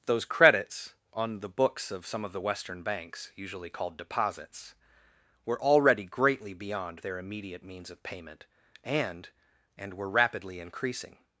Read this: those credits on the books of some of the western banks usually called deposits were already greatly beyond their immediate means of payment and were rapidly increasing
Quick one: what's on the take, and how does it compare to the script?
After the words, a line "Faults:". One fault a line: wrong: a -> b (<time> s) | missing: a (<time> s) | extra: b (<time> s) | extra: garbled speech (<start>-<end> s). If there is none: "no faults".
those credits on the books of some of the western banks usually called deposits were already greatly beyond their immediate means of payment and and were rapidly increasing
Faults:
extra: and (9.8 s)